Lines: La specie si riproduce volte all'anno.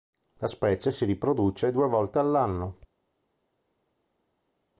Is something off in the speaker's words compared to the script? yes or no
yes